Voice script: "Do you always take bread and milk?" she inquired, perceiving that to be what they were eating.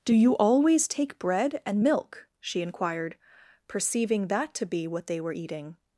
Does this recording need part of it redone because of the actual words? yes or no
no